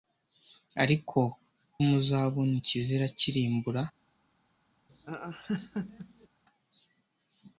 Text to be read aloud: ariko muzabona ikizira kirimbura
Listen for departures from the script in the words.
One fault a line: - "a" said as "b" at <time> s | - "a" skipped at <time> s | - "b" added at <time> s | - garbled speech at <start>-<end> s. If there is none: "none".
none